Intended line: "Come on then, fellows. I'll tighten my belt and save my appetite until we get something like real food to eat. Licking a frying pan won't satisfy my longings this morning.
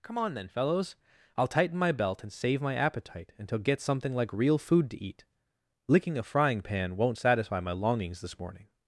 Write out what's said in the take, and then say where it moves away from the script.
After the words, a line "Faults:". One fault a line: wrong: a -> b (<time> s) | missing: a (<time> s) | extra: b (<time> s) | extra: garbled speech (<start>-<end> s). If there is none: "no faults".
"Come on then, fellows. I'll tighten my belt and save my appetite until get something like real food to eat. Licking a frying pan won't satisfy my longings this morning.
Faults:
missing: we (3.6 s)